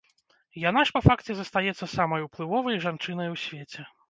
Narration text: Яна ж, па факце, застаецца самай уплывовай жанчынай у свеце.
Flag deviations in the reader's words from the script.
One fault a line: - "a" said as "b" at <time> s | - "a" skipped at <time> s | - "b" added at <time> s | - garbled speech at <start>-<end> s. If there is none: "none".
none